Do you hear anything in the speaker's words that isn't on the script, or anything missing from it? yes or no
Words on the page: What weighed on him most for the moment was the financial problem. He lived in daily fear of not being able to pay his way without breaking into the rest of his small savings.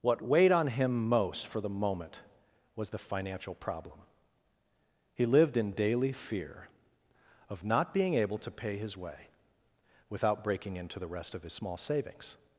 no